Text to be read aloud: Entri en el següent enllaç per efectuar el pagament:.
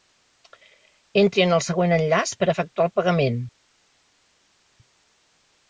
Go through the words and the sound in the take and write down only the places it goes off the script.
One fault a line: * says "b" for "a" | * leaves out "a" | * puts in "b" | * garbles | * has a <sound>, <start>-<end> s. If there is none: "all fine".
all fine